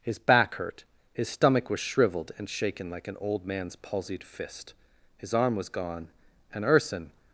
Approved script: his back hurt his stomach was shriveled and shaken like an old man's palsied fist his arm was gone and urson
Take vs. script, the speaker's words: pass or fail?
pass